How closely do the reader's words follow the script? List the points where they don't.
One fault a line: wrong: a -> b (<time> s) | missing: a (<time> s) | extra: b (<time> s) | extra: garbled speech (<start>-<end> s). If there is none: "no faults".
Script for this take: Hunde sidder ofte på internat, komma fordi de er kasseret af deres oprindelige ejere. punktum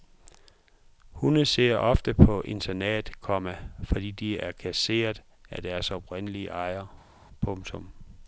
no faults